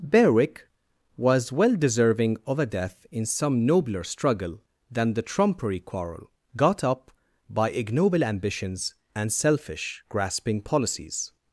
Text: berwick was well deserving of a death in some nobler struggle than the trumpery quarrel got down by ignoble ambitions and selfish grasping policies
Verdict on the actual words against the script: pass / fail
fail